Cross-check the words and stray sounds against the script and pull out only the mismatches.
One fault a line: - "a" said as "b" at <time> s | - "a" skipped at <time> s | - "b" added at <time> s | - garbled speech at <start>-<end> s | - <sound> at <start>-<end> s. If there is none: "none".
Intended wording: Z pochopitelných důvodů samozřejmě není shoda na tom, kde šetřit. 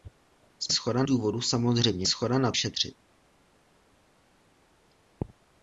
- "pochopitelných" said as "shoda" at 0.7 s
- "není" skipped at 2.1 s
- "tom kde" skipped at 2.5 s